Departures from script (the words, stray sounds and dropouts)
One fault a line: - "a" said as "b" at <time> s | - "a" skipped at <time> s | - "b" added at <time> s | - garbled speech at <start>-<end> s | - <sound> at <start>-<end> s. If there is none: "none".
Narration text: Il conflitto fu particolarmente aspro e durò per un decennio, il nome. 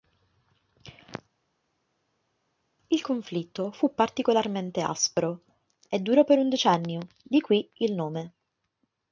- "di qui" added at 7.2 s